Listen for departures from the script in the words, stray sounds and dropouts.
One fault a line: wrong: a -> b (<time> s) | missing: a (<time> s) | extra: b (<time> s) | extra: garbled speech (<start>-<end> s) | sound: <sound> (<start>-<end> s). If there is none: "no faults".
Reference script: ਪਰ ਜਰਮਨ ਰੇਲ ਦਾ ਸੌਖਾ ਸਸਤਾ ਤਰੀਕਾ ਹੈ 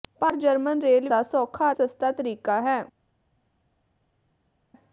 no faults